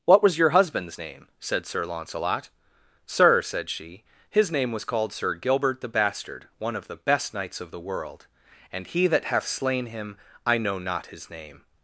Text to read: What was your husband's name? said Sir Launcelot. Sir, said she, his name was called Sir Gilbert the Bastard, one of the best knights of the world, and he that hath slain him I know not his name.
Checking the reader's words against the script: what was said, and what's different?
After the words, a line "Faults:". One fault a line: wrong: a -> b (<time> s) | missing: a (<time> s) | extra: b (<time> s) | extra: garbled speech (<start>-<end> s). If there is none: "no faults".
What was your husband's name? said Sir Launcelot. Sir, said she, his name was called Sir Gilbert the Bastard, one of the best knights of the world, and he that hath slain him I know not his name.
Faults:
no faults